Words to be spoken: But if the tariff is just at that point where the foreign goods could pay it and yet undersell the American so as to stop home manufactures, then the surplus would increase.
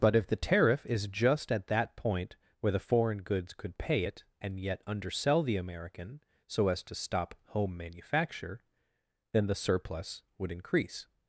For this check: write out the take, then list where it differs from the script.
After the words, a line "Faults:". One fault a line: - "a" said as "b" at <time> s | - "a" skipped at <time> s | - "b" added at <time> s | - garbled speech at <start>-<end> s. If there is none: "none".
But if the tariff is just at that point where the foreign goods could pay it and yet undersell the American so as to stop home manufacture, then the surplus would increase.
Faults:
- "manufactures" said as "manufacture" at 7.8 s